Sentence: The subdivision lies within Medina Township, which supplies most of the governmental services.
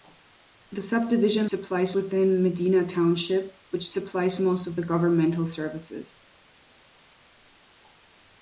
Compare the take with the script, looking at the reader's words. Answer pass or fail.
fail